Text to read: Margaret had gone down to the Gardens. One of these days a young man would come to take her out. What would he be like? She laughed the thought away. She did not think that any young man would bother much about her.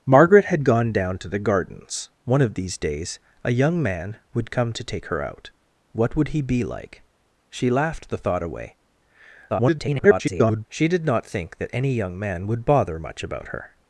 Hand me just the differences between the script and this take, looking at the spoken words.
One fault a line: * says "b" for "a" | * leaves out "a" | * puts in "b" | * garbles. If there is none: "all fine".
* garbles